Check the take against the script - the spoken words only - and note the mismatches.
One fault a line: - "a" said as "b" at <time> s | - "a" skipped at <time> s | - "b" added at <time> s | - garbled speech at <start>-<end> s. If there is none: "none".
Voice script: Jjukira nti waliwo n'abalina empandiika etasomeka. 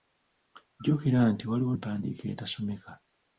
- "n'abalina" skipped at 1.7 s